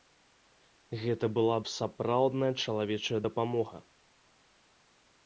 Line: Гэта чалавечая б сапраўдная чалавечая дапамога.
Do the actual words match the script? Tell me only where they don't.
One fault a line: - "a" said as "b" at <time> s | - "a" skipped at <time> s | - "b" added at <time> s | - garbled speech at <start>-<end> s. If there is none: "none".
- "чалавечая" said as "была" at 1.4 s